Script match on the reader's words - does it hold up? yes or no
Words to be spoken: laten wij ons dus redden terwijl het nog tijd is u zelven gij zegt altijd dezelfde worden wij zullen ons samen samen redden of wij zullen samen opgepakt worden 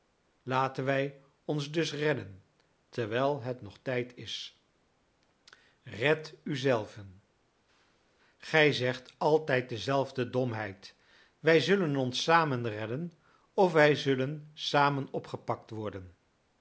no